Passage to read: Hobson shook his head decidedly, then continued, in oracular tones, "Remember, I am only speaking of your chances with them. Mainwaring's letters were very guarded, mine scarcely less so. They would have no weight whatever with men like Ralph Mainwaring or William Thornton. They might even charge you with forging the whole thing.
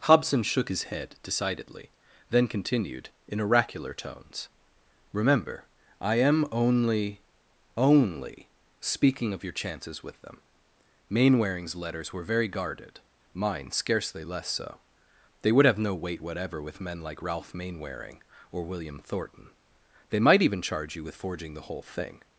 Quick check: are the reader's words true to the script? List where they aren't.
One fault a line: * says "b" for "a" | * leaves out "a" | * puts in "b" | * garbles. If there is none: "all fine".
* puts in "only"